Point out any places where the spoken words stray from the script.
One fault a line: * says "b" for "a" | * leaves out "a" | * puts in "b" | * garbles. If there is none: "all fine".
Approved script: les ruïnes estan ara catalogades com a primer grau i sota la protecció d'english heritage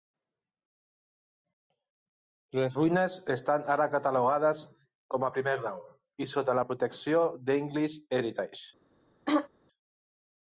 all fine